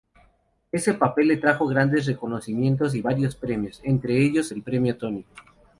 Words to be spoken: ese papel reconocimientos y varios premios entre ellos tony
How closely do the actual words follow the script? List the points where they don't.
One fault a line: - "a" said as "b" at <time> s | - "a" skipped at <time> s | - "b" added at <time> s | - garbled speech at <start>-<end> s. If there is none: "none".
- "le trajo grandes" added at 1.3 s
- "el premio" added at 4.5 s